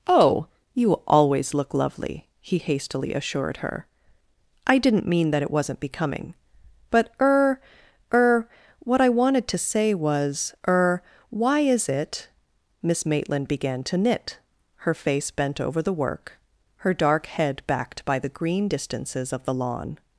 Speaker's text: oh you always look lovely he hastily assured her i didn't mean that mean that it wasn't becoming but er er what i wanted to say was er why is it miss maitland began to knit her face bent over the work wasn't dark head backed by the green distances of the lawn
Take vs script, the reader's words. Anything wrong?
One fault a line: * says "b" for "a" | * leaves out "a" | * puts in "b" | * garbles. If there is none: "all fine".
* leaves out "mean that"
* says "her" for "wasn't"